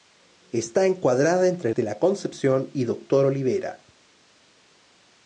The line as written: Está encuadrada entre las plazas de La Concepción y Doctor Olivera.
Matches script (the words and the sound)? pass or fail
fail